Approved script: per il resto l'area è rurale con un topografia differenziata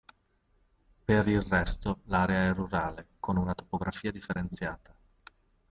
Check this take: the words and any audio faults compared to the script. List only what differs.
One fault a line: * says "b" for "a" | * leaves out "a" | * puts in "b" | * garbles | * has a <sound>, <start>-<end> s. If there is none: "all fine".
* says "una" for "un"